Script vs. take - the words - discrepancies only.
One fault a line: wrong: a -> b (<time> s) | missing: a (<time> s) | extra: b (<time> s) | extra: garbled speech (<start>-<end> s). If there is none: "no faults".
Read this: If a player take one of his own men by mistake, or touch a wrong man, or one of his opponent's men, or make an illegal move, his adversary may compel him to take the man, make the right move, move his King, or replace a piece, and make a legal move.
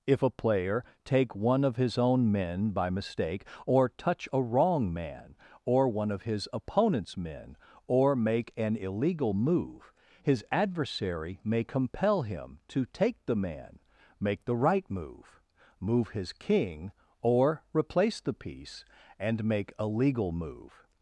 wrong: a -> the (18.2 s)